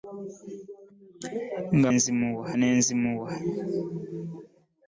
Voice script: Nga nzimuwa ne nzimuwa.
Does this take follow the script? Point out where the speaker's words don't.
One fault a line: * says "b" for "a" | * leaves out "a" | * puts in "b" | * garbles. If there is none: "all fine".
all fine